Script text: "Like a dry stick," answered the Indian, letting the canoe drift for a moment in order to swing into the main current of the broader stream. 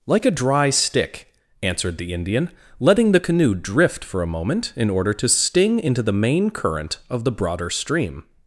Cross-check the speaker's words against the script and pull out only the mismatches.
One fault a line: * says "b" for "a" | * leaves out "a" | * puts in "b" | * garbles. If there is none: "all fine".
* says "sting" for "swing"